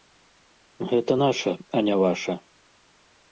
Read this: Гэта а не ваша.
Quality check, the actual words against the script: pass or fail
fail